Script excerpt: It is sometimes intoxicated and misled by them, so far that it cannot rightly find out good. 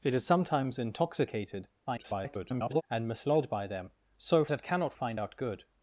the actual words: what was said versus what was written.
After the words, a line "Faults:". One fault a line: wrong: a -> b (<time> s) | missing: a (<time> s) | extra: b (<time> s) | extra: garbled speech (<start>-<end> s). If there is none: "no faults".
It is sometimes intoxicated [garbled] and misled by them, so it cannot find out good.
Faults:
extra: garbled speech (1.9-2.8 s)
missing: far that (4.5 s)
missing: rightly (5.0 s)